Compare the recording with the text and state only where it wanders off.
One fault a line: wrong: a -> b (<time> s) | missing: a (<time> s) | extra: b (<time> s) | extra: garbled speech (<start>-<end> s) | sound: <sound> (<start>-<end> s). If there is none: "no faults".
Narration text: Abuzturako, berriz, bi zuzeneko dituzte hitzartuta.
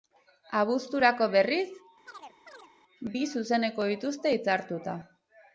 sound: chirp (2.1-2.7 s)